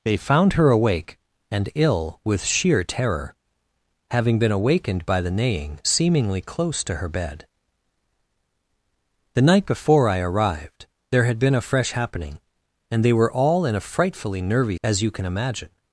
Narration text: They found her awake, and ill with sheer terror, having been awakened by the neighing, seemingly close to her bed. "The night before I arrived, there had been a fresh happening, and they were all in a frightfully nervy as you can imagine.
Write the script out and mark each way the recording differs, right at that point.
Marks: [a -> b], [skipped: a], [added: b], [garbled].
They found her awake, and ill with sheer terror, having been awakened by the neighing, seemingly close to her bed. "The night before I arrived, there had been a fresh happening, and they were all in a frightfully nervy as you can imagine.